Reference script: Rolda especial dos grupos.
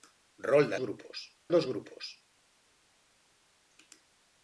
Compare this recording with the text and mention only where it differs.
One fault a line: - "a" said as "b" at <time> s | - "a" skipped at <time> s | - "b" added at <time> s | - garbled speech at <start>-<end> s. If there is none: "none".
- "especial" said as "grupos" at 0.8 s